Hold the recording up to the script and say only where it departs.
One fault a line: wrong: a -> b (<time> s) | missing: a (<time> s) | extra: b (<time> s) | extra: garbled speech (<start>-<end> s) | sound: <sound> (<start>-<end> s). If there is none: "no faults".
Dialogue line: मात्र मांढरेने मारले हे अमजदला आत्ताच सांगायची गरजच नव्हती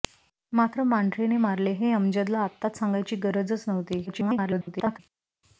extra: garbled speech (4.1-5.0 s)